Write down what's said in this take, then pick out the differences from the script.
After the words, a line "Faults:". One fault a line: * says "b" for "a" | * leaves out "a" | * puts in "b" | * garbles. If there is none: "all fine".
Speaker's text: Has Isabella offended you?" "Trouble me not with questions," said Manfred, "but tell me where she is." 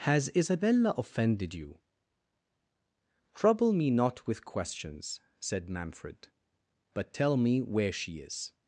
Has Isabella offended you?" "Trouble me not with questions," said Manfred, "but tell me where she is."
Faults:
all fine